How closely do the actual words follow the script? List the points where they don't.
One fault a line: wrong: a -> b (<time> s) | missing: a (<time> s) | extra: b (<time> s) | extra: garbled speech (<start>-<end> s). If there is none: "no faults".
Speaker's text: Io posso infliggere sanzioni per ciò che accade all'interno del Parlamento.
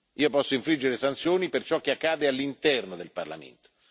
no faults